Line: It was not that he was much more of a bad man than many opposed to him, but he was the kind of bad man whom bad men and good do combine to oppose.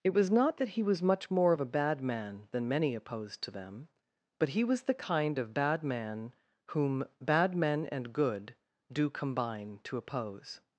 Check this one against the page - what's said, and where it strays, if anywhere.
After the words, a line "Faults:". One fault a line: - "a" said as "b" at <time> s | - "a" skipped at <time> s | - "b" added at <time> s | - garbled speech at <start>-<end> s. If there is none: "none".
It was not that he was much more of a bad man than many opposed to them, but he was the kind of bad man whom bad men and good do combine to oppose.
Faults:
- "him" said as "them" at 3.5 s